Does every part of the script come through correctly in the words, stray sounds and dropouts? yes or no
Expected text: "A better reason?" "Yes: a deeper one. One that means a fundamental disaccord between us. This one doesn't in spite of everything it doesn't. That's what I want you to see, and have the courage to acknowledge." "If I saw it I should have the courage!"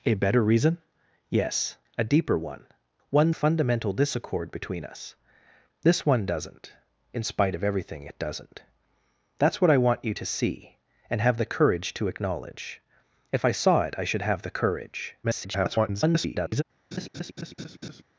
no